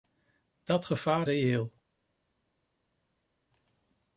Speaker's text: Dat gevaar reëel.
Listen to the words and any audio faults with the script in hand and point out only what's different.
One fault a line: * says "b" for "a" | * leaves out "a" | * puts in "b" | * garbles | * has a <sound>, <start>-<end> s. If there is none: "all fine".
all fine